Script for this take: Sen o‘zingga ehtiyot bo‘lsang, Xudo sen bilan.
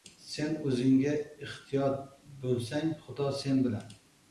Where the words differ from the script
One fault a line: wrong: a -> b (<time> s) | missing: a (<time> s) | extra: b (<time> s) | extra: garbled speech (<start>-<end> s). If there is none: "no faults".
no faults